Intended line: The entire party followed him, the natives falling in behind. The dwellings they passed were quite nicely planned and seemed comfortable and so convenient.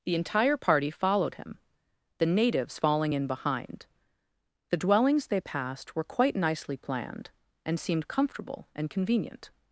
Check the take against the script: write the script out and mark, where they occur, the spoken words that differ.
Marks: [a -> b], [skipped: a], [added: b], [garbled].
The entire party followed him, the natives falling in behind. The dwellings they passed were quite nicely planned and seemed comfortable and [skipped: so] convenient.